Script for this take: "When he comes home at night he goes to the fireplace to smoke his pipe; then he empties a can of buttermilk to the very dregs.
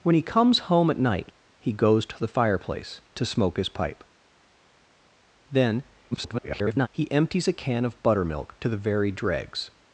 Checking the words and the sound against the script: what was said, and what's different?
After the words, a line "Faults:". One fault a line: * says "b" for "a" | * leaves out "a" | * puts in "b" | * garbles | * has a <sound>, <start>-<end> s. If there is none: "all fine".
"When he comes home at night he goes to the fireplace to smoke his pipe; then [garbled] he empties a can of buttermilk to the very dregs.
Faults:
* garbles